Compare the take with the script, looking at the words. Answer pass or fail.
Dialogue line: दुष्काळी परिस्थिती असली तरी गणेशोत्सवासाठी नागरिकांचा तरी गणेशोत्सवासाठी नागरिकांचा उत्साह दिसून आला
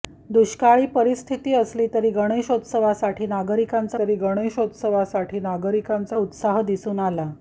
pass